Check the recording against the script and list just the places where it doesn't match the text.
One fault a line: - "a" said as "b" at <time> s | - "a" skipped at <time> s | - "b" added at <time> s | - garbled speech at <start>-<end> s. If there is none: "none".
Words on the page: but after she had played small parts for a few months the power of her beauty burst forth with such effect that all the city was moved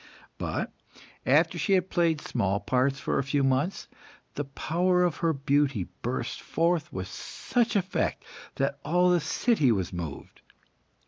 none